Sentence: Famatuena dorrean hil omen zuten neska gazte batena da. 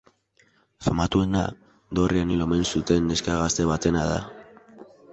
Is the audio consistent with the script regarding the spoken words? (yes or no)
yes